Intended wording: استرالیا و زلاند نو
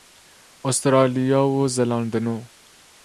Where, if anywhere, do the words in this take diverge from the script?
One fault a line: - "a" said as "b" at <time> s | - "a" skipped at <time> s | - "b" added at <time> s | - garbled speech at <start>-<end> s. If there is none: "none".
none